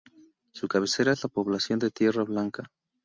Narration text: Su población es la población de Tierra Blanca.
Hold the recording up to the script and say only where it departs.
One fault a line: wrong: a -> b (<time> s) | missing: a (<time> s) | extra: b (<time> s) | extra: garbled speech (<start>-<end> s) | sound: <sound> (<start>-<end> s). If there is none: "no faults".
wrong: población -> cabecera (0.7 s)